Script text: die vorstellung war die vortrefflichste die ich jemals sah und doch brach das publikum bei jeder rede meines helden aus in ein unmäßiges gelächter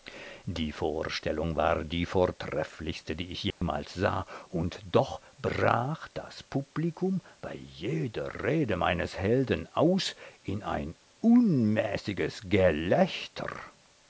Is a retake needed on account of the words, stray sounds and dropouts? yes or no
yes